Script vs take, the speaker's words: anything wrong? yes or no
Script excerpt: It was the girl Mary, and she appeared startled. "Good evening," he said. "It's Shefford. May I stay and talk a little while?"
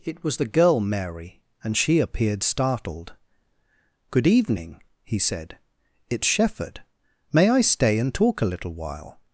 no